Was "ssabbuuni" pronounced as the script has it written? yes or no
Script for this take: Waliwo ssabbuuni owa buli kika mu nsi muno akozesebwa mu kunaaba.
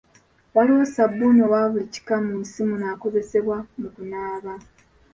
yes